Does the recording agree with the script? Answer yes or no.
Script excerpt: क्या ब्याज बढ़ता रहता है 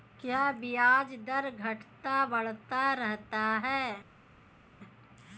no